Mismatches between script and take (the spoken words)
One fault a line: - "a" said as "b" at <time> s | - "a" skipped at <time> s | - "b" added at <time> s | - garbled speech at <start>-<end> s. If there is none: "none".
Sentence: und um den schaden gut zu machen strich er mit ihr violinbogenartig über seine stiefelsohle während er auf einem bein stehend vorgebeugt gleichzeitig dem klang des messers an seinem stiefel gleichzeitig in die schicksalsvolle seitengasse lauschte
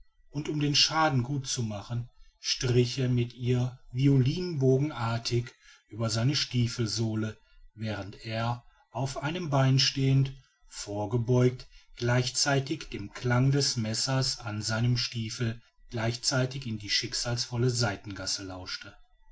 none